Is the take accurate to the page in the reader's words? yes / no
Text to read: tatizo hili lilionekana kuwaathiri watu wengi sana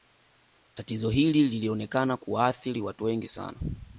yes